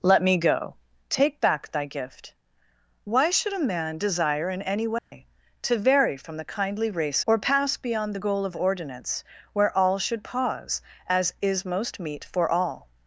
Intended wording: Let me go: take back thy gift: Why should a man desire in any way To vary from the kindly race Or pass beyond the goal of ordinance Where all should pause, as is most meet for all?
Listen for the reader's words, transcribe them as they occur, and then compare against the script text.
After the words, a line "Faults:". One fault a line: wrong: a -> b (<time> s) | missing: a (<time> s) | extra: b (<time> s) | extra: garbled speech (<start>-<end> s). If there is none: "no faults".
Let me go: take back thy gift: Why should a man desire in any way To vary from the kindly race Or pass beyond the goal of ordinance Where all should pause, as is most meet for all?
Faults:
no faults